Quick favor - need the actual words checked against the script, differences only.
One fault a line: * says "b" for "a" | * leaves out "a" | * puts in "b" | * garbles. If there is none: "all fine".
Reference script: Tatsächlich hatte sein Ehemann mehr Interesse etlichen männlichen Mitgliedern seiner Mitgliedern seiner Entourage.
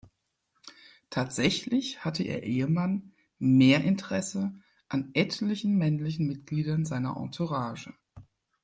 * says "ihr" for "sein"
* puts in "an"
* leaves out "Mitgliedern seiner"